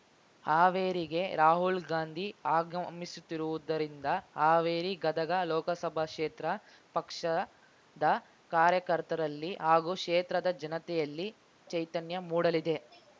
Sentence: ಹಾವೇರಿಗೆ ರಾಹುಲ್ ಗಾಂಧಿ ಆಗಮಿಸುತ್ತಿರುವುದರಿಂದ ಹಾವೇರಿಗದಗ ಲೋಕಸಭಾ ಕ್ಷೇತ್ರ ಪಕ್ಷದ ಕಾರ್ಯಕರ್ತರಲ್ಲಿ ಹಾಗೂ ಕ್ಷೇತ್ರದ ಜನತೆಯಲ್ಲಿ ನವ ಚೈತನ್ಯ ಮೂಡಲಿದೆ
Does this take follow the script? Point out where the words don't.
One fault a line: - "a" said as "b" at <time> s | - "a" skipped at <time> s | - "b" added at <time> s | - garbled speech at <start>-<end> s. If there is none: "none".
- "ನವ" skipped at 11.3 s